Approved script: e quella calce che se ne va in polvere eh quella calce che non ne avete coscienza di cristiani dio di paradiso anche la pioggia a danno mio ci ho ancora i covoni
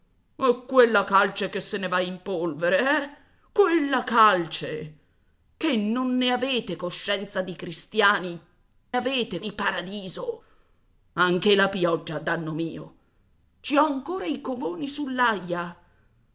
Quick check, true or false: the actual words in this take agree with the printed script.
false